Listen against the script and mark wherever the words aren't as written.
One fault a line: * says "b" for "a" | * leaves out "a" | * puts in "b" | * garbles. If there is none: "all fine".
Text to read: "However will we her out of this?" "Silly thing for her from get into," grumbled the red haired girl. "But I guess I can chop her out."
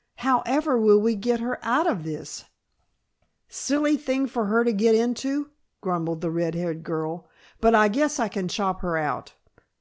* puts in "get"
* says "to" for "from"